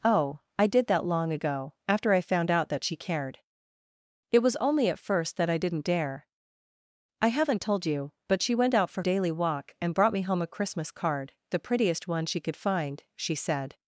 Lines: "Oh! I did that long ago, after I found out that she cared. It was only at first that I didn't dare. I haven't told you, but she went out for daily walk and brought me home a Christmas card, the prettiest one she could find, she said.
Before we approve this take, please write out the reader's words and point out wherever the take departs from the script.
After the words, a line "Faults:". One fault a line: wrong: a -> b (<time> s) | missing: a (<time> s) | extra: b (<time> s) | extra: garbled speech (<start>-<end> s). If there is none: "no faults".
"Oh! I did that long ago, after I found out that she cared. It was only at first that I didn't dare. I haven't told you, but she went out for daily walk and brought me home a Christmas card, the prettiest one she could find, she said.
Faults:
no faults